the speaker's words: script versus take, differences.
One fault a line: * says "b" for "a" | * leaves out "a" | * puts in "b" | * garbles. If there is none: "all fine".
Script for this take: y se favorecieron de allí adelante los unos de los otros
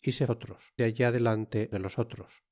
* says "otros" for "favorecieron"
* leaves out "los unos"